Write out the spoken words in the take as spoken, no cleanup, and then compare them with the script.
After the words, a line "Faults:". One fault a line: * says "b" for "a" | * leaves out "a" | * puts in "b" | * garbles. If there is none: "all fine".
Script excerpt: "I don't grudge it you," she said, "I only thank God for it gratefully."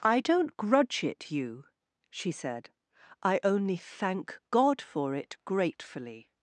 "I don't grudge it you," she said, "I only thank God for it gratefully."
Faults:
all fine